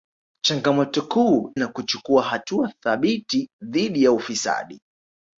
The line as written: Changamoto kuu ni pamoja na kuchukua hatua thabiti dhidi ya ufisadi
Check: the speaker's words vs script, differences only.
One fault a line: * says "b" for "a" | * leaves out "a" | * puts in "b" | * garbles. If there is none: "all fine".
* leaves out "ni pamoja"